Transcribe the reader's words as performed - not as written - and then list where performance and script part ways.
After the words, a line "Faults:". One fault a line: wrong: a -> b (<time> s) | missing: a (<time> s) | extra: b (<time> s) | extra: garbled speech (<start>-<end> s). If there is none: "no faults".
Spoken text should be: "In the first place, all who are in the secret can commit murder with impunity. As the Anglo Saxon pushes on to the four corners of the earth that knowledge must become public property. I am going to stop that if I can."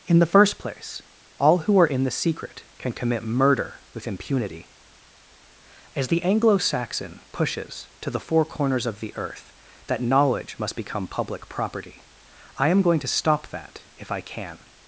"In the first place, all who are in the secret can commit murder with impunity. As the Anglo Saxon pushes to the four corners of the earth that knowledge must become public property. I am going to stop that if I can."
Faults:
missing: on (7.9 s)